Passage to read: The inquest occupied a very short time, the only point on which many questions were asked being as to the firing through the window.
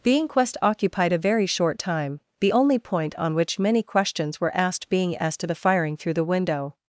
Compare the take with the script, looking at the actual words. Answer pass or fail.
pass